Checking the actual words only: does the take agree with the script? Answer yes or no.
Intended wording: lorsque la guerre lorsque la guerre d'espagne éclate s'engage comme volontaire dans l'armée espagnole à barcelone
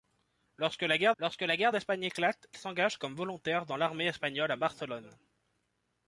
yes